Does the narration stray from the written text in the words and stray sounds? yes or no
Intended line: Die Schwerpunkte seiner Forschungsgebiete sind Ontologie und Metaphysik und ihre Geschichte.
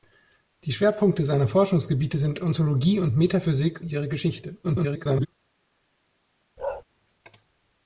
yes